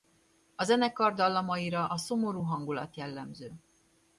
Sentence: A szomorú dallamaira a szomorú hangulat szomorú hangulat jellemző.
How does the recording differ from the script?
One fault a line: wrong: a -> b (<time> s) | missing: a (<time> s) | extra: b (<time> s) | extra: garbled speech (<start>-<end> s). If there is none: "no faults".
wrong: szomorú -> zenekar (0.6 s)
missing: szomorú hangulat (3.0 s)